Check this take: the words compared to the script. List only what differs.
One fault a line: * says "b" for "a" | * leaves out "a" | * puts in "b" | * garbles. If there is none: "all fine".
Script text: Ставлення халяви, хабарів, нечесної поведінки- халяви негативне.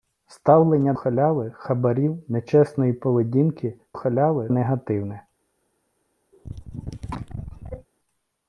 all fine